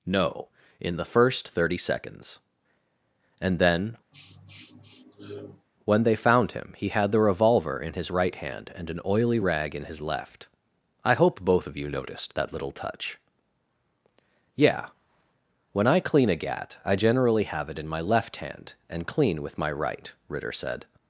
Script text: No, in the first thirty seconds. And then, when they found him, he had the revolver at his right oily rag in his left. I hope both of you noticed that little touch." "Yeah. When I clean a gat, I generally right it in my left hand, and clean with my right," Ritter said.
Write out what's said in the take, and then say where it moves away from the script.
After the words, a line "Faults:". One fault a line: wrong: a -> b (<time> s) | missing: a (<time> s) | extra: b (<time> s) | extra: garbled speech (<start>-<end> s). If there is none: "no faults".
No, in the first thirty seconds. And then, when they found him, he had the revolver in his right hand, and an oily rag in his left. I hope both of you noticed that little touch." "Yeah. When I clean a gat, I generally have it in my left hand, and clean with my right," Ritter said.
Faults:
wrong: at -> in (7.8 s)
extra: hand and an (8.3 s)
wrong: right -> have (17.4 s)